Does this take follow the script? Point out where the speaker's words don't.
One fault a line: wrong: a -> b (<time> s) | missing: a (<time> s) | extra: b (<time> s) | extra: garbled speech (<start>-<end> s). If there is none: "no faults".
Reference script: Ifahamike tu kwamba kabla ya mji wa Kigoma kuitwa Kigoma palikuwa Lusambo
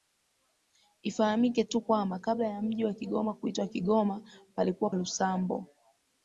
no faults